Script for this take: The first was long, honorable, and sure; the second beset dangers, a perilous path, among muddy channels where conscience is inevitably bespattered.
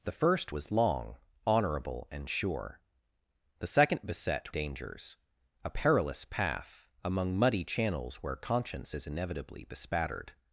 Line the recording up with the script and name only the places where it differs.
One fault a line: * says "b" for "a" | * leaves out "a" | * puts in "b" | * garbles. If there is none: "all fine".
all fine